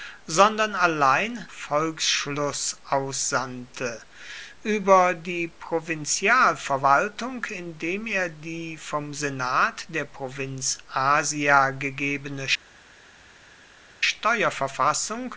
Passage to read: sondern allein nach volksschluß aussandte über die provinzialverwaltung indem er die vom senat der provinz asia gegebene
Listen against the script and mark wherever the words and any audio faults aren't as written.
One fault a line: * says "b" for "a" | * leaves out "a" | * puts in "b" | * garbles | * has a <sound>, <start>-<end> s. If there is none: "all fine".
* leaves out "nach"